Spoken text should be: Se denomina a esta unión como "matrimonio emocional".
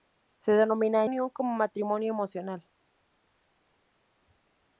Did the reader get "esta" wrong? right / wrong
wrong